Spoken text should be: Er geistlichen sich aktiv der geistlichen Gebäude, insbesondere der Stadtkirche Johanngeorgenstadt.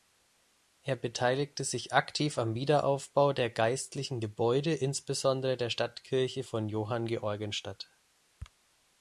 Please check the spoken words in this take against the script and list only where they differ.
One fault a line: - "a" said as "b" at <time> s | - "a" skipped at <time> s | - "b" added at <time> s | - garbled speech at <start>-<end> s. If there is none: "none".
- "geistlichen" said as "beteiligte" at 0.9 s
- "am Wiederaufbau" added at 2.4 s
- "von" added at 6.4 s